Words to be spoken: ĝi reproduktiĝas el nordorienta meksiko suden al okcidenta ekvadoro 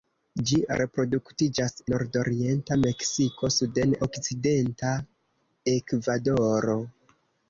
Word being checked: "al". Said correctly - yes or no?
no